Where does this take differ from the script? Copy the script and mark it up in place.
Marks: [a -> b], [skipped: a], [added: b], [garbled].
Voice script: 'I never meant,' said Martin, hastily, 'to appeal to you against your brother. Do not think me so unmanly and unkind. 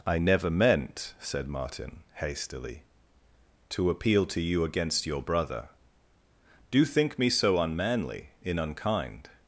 'I never meant,' said Martin, hastily, 'to appeal to you against your brother. Do [skipped: not] think me so unmanly [and -> in] unkind.